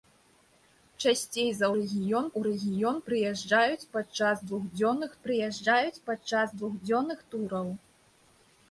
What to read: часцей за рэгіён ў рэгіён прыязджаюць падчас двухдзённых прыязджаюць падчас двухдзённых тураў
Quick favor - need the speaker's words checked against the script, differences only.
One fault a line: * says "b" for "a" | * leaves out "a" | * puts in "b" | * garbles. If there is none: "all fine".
all fine